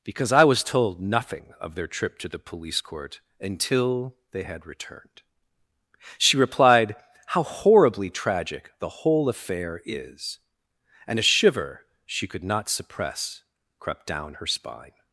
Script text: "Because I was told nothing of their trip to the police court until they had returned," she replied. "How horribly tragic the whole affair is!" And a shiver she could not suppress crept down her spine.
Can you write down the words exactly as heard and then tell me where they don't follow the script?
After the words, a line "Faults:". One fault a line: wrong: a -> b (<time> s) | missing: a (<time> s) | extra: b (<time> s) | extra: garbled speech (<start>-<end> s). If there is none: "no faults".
"Because I was told nothing of their trip to the police court until they had returned," she replied. "How horribly tragic the whole affair is!" And a shiver she could not suppress crept down her spine.
Faults:
no faults